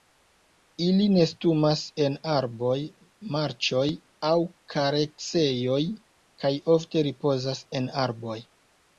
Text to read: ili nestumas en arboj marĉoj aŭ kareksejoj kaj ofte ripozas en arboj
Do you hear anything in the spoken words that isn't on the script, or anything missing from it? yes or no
no